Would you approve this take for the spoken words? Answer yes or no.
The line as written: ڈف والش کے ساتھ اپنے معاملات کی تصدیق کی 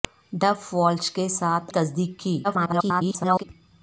no